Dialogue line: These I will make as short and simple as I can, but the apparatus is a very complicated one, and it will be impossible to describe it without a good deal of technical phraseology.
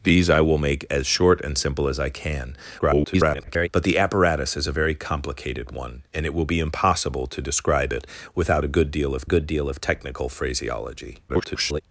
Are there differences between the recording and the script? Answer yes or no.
yes